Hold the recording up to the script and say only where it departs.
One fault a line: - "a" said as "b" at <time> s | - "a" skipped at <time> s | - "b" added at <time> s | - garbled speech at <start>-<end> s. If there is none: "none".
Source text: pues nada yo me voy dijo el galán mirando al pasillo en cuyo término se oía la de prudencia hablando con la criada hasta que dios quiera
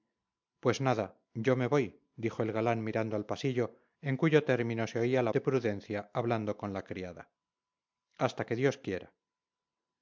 none